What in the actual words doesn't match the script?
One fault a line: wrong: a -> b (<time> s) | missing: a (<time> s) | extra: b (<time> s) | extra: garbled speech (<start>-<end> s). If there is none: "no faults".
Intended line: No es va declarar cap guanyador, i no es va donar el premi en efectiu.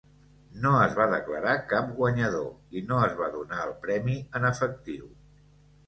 no faults